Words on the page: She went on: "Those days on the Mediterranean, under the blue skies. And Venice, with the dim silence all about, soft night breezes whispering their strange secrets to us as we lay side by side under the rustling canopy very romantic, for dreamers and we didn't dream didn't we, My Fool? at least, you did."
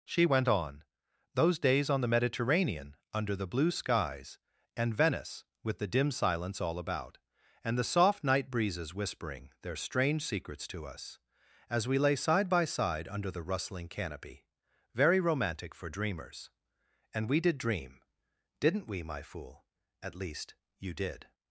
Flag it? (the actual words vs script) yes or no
yes